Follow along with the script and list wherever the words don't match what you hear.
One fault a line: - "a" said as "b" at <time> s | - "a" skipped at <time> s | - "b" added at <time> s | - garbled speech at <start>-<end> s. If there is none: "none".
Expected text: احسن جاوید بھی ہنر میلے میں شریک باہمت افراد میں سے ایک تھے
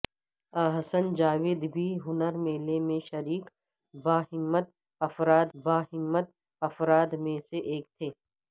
- "باہمت افراد" added at 5.5 s